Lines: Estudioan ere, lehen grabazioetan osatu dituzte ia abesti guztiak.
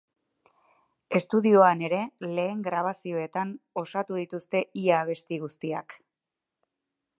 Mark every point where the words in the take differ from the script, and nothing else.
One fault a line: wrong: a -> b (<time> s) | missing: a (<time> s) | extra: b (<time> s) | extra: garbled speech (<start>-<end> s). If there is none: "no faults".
no faults